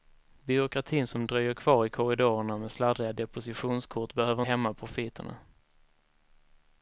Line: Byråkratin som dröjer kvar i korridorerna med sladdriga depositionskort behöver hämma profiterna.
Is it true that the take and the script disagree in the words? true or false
false